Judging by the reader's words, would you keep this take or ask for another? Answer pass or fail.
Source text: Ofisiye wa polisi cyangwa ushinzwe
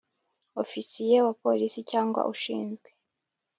pass